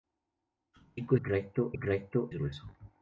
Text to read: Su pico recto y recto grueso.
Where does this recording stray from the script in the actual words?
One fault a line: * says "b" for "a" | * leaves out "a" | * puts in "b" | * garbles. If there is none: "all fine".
all fine